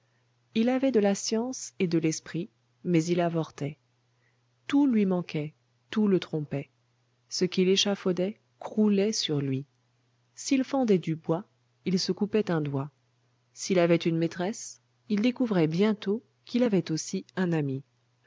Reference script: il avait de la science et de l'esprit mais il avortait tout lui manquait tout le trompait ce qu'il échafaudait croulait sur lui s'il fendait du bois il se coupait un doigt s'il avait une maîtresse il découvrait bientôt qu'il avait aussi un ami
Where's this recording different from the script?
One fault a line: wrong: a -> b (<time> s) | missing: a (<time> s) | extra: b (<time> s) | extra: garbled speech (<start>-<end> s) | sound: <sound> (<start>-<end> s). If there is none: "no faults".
no faults